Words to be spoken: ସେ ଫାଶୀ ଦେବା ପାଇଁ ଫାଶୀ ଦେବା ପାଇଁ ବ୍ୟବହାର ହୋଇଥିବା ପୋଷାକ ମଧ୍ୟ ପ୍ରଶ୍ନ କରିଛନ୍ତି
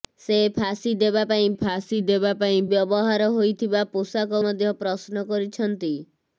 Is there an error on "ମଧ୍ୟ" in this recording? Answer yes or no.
no